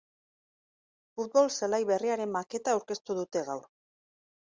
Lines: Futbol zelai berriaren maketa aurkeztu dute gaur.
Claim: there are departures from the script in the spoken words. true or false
false